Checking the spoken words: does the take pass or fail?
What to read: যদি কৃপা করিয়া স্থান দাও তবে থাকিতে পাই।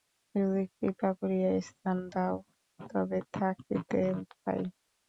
pass